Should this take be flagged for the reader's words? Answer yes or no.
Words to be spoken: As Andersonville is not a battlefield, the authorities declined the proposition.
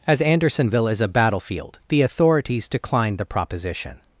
yes